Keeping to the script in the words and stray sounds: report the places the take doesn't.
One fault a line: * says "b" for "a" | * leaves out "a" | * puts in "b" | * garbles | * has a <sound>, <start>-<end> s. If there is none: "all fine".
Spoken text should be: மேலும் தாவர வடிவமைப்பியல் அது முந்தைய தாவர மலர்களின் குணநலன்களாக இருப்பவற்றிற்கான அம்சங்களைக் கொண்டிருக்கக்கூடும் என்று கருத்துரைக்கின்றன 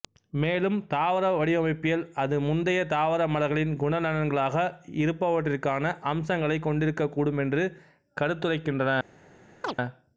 * has a chirp, 9.6-9.8 s